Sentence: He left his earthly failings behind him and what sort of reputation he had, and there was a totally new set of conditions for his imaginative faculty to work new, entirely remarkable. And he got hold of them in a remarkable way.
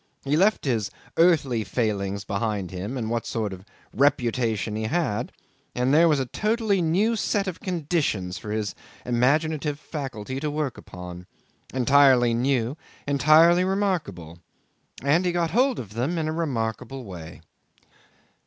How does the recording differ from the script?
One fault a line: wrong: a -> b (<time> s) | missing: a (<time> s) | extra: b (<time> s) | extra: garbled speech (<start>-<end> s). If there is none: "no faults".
extra: upon Entirely (10.8 s)